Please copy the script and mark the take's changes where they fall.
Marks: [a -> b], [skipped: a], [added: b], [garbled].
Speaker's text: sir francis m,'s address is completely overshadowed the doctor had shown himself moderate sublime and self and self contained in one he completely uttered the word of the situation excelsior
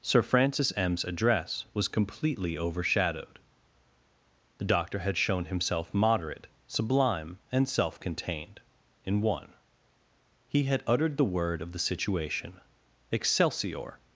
sir francis m,'s address [is -> was] completely overshadowed the doctor had shown himself moderate sublime and self [skipped: and self] contained in one he [completely -> had] uttered the word of the situation excelsior